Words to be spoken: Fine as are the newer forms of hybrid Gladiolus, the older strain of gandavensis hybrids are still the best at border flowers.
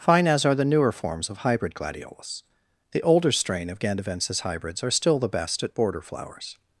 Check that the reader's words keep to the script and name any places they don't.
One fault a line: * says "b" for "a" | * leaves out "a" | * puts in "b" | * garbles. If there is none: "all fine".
all fine